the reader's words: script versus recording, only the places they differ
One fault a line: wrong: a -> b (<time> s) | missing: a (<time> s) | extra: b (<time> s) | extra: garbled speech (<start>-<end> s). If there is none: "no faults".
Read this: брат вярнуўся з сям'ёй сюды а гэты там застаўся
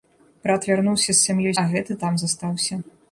missing: сюды (1.6 s)